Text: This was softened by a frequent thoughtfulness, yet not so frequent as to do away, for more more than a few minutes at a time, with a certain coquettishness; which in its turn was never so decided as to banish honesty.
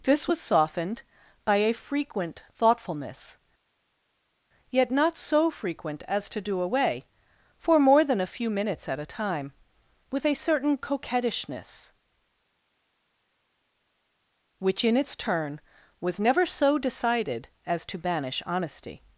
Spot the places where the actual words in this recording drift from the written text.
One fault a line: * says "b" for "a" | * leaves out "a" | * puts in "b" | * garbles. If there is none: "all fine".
* leaves out "more"